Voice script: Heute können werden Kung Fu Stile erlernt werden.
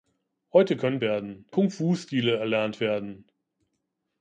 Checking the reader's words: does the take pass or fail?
pass